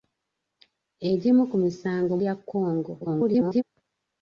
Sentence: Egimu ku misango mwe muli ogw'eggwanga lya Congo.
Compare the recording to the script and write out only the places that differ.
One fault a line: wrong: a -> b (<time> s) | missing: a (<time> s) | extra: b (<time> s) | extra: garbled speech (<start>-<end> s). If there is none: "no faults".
missing: mwe muli ogw'eggwanga (2.1 s)
extra: garbled speech (3.0-3.6 s)